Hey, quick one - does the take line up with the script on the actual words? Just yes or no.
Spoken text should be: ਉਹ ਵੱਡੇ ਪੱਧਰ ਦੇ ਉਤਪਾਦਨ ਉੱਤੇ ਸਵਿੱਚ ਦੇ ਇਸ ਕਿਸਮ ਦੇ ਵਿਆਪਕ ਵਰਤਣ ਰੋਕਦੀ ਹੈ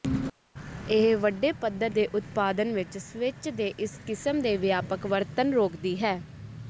no